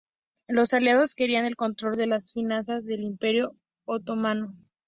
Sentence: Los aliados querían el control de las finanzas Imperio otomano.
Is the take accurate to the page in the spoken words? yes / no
no